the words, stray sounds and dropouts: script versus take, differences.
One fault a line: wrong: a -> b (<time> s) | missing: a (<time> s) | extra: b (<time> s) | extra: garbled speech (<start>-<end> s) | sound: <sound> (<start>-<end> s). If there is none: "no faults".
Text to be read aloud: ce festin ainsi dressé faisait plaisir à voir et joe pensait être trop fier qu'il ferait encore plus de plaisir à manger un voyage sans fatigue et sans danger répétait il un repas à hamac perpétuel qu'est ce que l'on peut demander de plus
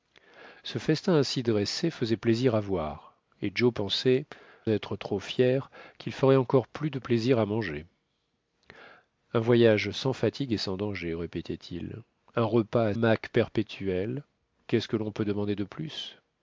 no faults